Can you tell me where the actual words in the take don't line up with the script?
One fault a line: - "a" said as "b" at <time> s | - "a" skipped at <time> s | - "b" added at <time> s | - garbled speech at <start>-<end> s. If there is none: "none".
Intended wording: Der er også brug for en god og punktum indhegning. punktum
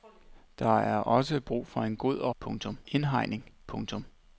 none